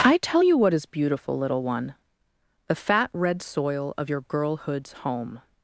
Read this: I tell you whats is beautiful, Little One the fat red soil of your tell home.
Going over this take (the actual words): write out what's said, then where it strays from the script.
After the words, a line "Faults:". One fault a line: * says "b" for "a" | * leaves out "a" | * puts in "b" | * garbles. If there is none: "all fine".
I tell you what is beautiful, Little One the fat red soil of your girlhood's home.
Faults:
* says "what" for "whats"
* says "girlhood's" for "tell"